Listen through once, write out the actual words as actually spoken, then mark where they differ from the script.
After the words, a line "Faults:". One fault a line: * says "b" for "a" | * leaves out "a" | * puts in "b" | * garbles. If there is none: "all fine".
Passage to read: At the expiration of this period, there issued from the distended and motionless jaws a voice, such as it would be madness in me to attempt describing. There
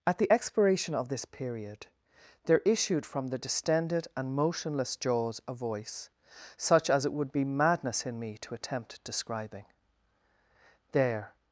At the expiration of this period, there issued from the distended and motionless jaws a voice, such as it would be madness in me to attempt describing. There
Faults:
all fine